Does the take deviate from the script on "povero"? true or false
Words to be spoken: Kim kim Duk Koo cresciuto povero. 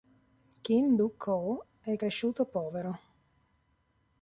false